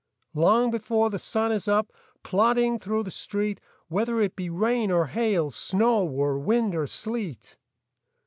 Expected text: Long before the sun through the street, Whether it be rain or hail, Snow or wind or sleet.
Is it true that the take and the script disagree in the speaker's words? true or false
true